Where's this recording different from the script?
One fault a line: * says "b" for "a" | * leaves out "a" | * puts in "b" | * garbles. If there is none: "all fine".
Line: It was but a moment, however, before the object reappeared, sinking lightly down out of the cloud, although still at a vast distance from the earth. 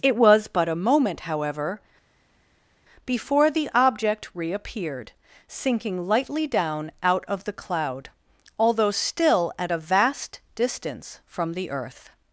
all fine